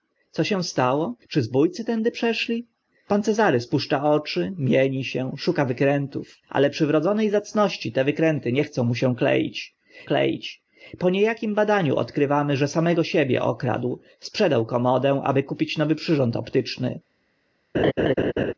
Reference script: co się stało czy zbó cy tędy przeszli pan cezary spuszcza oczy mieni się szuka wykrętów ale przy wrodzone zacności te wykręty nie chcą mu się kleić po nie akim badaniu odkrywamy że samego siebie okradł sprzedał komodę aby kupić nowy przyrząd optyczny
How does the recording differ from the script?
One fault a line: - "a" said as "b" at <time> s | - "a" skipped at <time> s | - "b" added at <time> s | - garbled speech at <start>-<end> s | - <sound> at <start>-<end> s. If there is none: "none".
- "kleić" added at 10.0 s
- laugh at 17.7-18.5 s